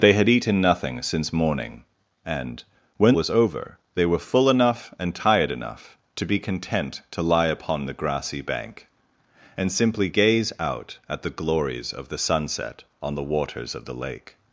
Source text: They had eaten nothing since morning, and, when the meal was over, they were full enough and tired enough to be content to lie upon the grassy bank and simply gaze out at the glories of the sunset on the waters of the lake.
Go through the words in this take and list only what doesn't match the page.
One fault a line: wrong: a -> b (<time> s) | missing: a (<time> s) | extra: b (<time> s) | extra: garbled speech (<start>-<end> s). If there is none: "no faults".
missing: the meal (3.2 s)